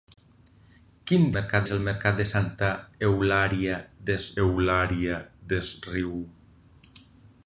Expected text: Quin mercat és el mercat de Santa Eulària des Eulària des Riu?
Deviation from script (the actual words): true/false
false